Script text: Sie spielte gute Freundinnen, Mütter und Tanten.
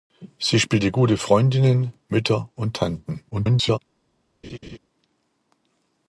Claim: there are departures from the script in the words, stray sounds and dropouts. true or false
true